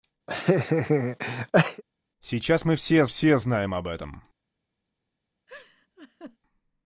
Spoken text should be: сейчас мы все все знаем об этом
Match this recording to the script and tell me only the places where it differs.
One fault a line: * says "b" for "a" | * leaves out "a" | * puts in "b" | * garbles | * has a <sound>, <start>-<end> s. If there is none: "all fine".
* has a laugh, 0.3-1.8 s
* has a laugh, 5.5-6.4 s